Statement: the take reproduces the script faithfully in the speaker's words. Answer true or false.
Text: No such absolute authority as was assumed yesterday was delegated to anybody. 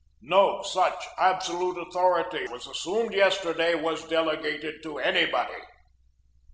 false